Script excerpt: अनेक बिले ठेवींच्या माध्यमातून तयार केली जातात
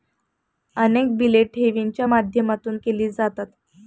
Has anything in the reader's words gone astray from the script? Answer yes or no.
yes